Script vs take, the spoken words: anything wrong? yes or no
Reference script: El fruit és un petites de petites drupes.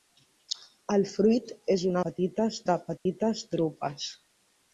no